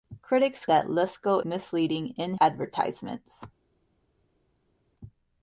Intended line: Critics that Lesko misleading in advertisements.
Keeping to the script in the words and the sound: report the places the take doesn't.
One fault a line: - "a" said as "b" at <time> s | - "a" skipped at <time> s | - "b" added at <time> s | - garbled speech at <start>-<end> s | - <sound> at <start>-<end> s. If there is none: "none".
none